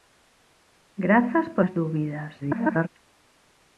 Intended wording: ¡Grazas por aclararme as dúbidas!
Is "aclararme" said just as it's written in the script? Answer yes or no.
no